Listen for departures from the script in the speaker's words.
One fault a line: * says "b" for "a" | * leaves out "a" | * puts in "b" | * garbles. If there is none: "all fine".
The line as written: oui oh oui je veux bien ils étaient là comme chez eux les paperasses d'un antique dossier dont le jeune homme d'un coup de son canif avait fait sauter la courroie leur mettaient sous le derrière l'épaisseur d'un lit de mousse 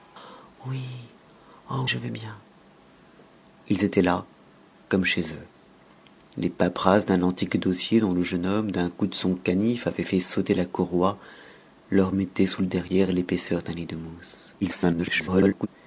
* leaves out "oui"
* garbles